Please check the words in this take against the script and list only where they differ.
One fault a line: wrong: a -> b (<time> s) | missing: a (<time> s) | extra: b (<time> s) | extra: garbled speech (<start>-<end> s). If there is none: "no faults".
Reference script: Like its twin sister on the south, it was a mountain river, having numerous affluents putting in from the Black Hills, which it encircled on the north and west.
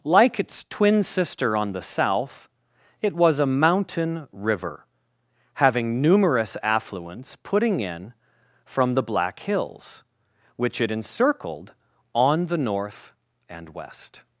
no faults